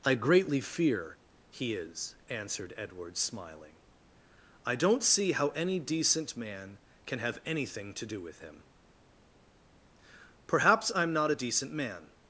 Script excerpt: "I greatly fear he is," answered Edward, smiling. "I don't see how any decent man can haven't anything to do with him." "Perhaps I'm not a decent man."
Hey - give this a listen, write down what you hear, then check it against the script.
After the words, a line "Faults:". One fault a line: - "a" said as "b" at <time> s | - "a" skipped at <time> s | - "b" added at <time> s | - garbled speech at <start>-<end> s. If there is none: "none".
"I greatly fear he is," answered Edward, smiling. "I don't see how any decent man can have anything to do with him." "Perhaps I'm not a decent man."
Faults:
- "haven't" said as "have" at 7.2 s